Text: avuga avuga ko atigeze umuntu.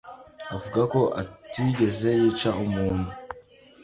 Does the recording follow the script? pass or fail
fail